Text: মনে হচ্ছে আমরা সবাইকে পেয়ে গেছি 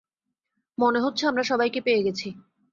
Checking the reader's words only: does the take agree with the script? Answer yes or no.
yes